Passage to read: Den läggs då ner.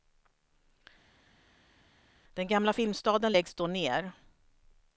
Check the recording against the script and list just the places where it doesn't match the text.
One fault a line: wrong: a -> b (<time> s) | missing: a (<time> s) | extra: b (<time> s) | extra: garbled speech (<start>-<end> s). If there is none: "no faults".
extra: gamla filmstaden (2.5 s)